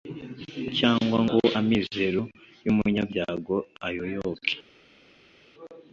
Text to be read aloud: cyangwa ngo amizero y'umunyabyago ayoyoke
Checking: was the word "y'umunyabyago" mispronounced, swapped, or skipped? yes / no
no